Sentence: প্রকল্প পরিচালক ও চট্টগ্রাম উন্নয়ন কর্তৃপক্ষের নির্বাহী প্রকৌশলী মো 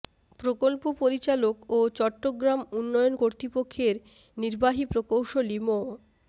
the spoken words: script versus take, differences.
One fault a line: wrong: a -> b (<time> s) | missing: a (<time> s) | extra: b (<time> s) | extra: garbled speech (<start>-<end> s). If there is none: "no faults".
no faults